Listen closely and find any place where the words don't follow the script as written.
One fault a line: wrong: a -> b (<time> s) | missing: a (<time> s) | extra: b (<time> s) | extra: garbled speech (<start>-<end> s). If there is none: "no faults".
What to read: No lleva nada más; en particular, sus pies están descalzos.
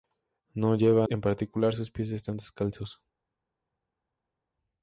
missing: nada más (1.1 s)